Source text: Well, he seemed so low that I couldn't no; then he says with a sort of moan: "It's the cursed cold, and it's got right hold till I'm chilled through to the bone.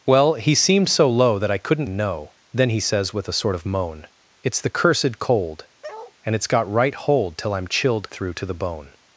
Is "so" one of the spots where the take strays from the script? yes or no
no